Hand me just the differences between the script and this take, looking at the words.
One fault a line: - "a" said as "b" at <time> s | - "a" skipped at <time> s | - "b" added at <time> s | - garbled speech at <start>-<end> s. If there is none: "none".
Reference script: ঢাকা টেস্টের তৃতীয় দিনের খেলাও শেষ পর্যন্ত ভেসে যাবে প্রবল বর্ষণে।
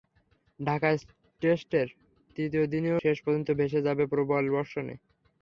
- "খেলাও" skipped at 3.0 s